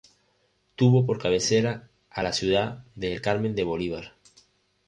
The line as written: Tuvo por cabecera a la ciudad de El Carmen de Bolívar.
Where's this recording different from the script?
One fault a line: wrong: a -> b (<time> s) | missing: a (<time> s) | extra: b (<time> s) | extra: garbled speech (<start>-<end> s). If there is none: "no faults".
no faults